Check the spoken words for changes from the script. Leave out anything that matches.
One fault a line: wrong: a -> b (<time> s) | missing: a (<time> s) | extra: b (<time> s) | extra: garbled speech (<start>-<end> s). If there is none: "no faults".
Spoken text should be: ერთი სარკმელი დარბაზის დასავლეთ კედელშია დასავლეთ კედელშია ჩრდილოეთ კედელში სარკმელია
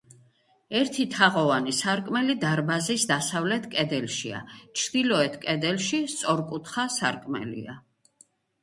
extra: თაღოვანი (1.1 s)
missing: დასავლეთ კედელშია (4.4 s)
extra: სწორკუთხა (6.1 s)